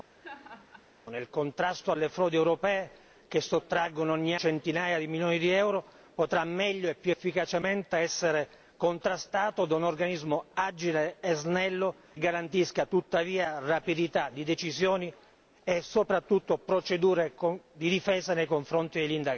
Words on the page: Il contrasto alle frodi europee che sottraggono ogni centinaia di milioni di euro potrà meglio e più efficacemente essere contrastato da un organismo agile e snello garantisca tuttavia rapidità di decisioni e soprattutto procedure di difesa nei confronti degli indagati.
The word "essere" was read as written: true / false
true